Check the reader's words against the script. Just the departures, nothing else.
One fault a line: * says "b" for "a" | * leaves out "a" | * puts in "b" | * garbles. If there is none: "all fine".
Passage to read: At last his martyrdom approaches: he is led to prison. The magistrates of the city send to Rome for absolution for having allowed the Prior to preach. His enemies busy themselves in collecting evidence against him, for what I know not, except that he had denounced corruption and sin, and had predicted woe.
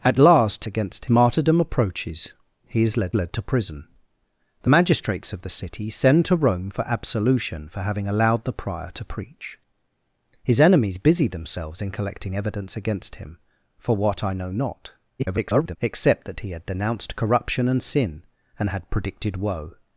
* says "against" for "his"
* puts in "led"
* garbles